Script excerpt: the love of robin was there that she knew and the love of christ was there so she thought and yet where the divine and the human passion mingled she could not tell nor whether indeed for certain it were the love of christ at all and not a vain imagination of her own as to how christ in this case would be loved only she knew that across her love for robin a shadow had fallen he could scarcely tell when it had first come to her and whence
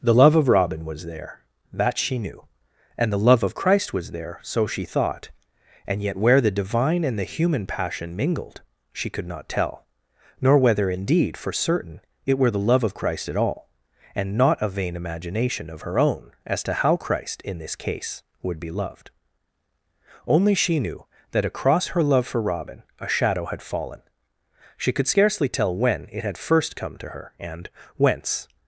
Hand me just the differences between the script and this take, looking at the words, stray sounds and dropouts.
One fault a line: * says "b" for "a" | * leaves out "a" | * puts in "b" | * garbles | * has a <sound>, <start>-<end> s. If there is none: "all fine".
* says "she" for "he"